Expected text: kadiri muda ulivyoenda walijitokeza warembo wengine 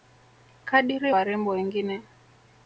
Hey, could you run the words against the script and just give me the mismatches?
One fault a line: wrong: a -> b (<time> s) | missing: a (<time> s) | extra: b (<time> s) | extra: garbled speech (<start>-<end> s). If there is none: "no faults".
missing: muda ulivyoenda walijitokeza (1.1 s)